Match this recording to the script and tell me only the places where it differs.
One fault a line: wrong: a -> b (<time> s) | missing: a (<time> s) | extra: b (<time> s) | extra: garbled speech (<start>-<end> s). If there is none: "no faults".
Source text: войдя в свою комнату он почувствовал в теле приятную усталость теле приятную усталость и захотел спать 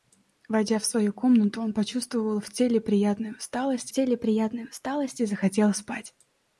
no faults